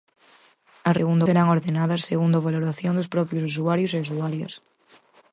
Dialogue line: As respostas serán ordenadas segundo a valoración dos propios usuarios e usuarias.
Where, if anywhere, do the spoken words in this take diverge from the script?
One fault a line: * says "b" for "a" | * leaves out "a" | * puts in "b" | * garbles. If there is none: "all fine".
* says "segundo" for "respostas"